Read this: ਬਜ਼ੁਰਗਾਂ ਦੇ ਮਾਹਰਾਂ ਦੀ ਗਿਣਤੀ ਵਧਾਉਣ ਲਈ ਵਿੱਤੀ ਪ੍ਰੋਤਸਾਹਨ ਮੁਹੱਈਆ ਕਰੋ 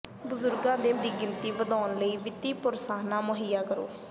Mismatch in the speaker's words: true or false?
true